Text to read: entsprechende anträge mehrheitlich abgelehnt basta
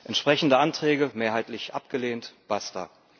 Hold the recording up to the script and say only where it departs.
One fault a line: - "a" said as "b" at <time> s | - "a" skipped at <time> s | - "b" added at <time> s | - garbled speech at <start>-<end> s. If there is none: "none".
none